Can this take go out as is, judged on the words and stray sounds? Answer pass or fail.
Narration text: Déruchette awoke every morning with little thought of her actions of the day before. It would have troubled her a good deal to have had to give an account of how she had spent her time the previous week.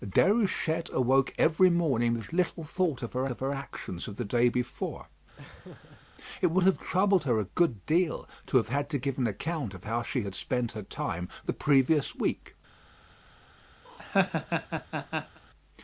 fail